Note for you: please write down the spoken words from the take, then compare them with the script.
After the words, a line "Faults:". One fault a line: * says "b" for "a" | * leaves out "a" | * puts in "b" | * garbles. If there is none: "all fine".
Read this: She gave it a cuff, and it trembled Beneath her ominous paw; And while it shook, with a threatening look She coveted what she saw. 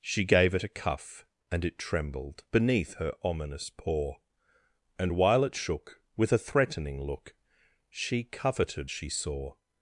She gave it a cuff, and it trembled Beneath her ominous paw; And while it shook, with a threatening look She coveted she saw.
Faults:
* leaves out "what"